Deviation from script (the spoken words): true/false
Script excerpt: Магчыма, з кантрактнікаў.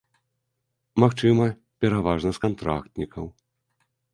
true